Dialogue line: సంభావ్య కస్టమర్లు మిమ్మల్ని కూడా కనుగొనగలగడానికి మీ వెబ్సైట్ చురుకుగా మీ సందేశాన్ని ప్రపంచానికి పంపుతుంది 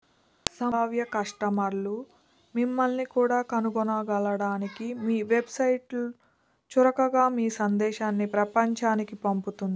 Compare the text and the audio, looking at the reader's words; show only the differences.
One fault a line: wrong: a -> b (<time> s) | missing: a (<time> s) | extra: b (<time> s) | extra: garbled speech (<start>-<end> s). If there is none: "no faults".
no faults